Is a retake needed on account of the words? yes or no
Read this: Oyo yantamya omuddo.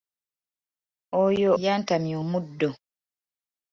no